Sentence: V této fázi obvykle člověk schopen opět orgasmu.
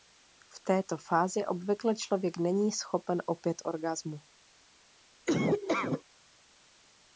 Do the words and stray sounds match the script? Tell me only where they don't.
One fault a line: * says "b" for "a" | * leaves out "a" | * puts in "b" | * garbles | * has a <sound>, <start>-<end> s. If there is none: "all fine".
* puts in "není"
* has a laugh, 5.3-6.0 s